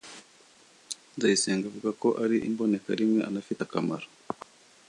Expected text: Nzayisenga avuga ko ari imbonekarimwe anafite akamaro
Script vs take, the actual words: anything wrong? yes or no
no